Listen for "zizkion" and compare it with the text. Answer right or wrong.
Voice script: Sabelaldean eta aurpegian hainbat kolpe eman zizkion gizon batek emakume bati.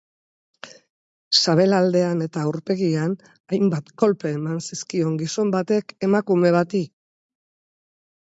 right